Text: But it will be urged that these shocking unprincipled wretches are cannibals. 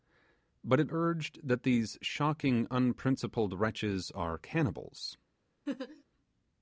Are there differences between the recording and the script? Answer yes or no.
yes